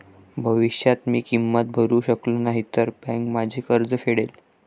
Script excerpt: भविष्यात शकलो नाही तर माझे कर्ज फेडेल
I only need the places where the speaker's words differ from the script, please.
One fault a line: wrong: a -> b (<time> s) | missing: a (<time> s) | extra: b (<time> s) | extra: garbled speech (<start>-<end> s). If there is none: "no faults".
extra: मी किंमत भरू (1.1 s)
extra: बँक (3.0 s)